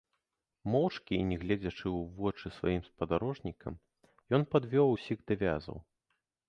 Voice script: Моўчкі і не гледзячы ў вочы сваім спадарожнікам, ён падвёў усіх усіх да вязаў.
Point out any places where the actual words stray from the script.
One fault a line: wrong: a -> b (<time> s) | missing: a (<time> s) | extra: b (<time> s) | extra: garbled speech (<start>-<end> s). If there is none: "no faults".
missing: усіх (5.2 s)